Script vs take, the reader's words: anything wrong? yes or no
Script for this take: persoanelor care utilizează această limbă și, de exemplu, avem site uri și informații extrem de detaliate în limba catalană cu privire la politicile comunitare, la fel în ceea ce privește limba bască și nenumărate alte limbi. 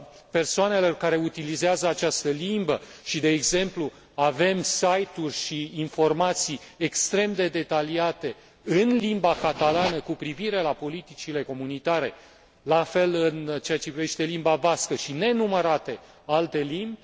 no